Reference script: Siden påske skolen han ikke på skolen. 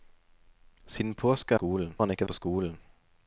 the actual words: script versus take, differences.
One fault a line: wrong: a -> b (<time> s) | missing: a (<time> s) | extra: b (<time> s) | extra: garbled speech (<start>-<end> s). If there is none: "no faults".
no faults